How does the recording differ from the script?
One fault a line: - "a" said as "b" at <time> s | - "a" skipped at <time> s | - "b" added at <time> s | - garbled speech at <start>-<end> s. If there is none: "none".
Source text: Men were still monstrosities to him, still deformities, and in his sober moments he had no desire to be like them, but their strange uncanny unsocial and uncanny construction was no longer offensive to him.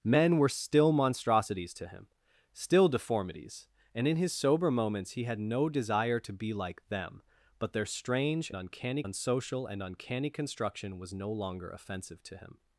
none